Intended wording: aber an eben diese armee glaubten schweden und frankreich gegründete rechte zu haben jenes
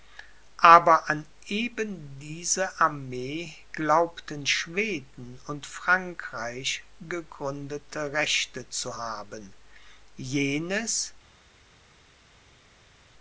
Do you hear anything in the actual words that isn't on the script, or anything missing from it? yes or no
no